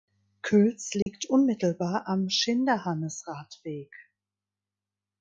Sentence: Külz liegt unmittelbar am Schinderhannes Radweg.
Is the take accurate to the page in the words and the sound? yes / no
no